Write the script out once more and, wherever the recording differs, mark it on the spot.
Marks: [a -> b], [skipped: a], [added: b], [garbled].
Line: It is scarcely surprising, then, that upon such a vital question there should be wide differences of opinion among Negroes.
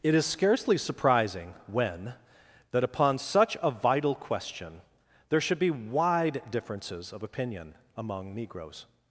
It is scarcely surprising, [then, -> when] that upon such a vital question there should be wide differences of opinion among Negroes.